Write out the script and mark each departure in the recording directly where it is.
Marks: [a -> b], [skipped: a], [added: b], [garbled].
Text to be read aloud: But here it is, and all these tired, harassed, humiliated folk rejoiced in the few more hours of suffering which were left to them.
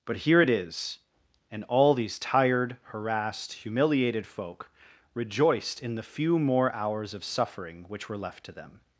But here it is, and all these tired, harassed, humiliated folk rejoiced in the few more hours of suffering which were left to them.